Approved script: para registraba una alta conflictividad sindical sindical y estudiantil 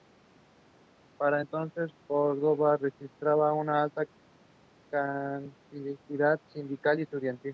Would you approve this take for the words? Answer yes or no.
no